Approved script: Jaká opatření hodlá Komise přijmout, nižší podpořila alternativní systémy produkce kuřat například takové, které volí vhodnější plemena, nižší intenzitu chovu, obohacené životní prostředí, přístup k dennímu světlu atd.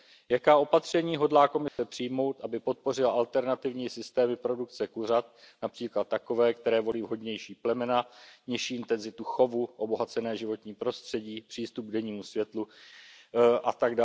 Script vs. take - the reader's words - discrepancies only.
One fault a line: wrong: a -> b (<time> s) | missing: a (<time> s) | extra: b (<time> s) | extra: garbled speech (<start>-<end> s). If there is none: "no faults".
wrong: nižší -> aby (2.4 s)